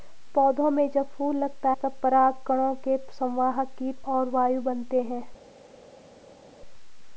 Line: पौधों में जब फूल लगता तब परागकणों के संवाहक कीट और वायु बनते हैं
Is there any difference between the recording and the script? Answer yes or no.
no